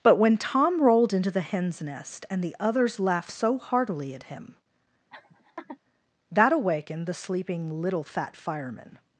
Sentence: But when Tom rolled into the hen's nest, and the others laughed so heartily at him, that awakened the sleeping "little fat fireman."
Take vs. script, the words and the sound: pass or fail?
fail